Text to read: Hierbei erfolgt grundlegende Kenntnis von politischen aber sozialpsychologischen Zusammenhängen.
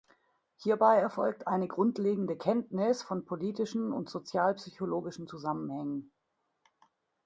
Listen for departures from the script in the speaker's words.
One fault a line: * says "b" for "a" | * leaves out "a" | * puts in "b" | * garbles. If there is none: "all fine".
* puts in "eine"
* says "und" for "aber"